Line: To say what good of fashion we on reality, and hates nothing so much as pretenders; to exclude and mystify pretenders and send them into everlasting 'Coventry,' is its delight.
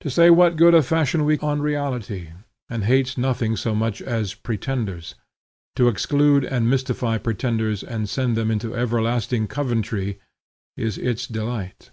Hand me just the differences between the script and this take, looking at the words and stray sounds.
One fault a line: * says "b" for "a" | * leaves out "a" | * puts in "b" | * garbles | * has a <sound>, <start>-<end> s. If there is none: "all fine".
all fine